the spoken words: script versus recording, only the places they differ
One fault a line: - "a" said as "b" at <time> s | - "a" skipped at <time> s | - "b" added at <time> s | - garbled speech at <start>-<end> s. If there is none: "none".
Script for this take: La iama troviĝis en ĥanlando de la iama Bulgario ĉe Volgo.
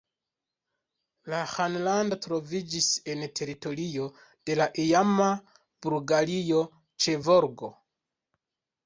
- "iama" said as "ĥanlando" at 1.5 s
- "ĥanlando" said as "teritorio" at 3.4 s